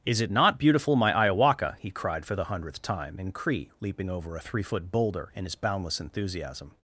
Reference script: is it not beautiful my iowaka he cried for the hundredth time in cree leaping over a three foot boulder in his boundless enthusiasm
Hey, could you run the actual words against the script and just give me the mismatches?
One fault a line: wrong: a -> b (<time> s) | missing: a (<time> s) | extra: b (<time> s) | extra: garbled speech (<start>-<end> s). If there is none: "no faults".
no faults